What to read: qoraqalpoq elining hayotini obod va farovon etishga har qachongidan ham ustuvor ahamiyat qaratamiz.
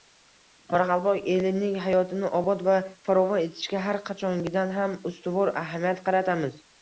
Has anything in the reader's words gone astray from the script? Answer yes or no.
no